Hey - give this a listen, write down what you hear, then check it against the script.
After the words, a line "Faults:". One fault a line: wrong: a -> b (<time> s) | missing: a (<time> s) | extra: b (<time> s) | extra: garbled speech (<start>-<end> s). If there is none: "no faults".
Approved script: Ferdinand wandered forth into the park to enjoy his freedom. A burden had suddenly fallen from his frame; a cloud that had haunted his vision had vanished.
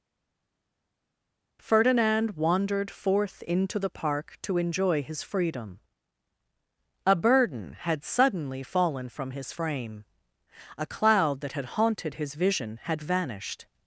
Ferdinand wandered forth into the park to enjoy his freedom. A burden had suddenly fallen from his frame; a cloud that had haunted his vision had vanished.
Faults:
no faults